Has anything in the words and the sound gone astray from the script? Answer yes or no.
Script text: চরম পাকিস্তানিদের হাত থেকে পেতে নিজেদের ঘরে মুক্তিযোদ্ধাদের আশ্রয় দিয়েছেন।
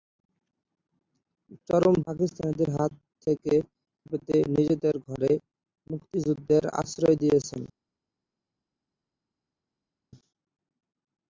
no